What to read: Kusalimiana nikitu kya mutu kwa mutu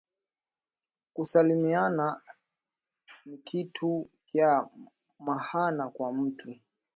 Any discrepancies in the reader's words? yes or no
yes